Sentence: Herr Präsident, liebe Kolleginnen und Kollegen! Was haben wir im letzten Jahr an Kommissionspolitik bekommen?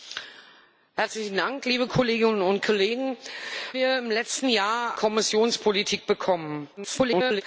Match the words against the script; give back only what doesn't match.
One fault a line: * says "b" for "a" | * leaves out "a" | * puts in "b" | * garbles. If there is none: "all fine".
* leaves out "Was haben"
* leaves out "an"
* garbles